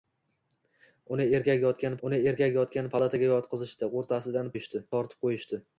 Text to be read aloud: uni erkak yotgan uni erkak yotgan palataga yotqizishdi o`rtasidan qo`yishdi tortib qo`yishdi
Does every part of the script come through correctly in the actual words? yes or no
yes